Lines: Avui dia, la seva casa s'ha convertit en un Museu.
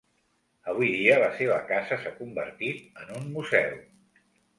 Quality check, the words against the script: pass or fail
pass